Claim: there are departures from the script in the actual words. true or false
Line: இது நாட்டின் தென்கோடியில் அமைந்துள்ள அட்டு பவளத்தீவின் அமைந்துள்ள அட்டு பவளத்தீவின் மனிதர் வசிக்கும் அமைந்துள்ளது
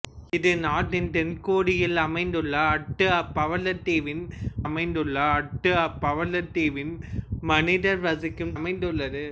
false